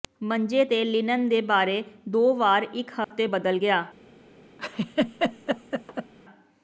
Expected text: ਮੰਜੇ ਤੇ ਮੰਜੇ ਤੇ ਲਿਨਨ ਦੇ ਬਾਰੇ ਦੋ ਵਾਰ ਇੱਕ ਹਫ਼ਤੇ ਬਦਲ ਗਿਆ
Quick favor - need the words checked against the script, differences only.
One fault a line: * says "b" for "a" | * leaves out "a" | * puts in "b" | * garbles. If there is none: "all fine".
* leaves out "ਮੰਜੇ ਤੇ"